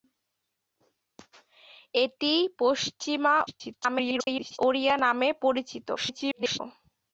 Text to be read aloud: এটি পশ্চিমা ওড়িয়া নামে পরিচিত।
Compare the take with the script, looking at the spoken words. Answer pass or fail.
fail